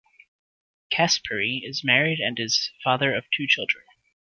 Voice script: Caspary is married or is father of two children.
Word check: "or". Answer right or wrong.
wrong